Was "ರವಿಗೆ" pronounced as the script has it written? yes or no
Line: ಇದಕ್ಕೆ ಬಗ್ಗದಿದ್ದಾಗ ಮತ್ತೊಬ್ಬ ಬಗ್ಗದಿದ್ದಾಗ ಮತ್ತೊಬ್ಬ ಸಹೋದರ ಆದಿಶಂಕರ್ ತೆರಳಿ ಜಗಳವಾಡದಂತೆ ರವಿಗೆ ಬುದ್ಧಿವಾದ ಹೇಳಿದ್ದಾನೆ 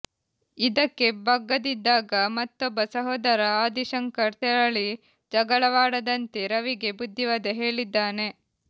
yes